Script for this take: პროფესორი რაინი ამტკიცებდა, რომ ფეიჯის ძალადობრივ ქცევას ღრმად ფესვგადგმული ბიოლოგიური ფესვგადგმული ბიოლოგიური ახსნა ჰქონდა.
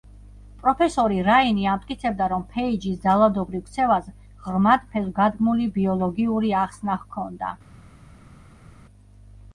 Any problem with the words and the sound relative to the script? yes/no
yes